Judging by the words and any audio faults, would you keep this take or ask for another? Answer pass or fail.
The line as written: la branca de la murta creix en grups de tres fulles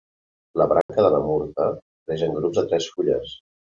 fail